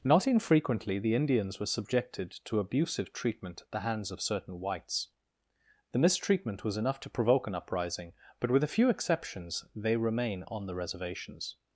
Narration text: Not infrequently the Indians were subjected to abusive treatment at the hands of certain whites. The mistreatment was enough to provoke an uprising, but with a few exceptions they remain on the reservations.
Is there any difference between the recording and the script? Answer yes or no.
no